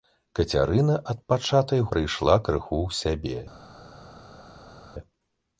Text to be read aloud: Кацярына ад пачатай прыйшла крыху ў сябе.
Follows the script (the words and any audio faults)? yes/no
yes